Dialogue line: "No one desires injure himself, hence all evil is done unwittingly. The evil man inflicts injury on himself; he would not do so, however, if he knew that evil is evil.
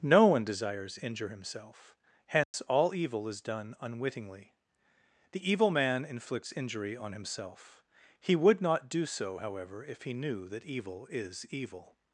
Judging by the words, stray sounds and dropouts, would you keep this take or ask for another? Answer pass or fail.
fail